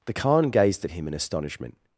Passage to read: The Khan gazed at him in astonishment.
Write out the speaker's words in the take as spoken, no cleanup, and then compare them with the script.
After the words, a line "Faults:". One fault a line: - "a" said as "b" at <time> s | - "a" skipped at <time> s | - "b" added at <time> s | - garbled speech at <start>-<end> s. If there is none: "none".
The Khan gazed at him in astonishment.
Faults:
none